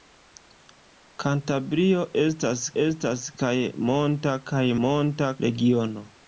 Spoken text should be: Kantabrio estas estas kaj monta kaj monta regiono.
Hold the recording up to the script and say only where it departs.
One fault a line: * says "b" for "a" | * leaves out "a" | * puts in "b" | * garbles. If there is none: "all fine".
all fine